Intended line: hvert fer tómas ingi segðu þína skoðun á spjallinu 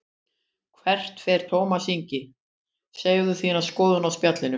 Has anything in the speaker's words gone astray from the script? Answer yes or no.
no